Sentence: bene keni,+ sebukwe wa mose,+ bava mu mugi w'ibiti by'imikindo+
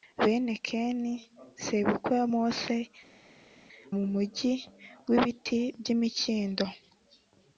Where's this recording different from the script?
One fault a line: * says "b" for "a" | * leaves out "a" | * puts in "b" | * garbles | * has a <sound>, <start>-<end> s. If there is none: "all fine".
* leaves out "bava"